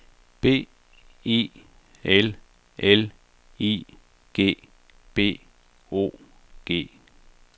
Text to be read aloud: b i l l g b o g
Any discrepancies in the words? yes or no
yes